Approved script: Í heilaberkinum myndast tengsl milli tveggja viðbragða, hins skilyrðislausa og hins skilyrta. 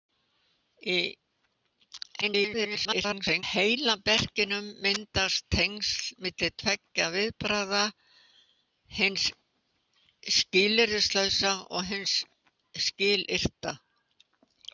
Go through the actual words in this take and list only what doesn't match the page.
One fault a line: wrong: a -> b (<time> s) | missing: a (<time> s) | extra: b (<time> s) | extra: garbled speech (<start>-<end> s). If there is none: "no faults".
extra: garbled speech (2.2-3.4 s)